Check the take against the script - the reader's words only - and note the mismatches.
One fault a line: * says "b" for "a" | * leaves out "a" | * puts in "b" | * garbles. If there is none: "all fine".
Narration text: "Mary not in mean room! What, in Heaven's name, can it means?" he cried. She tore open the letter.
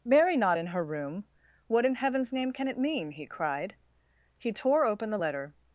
* says "her" for "mean"
* says "mean" for "means"
* says "He" for "She"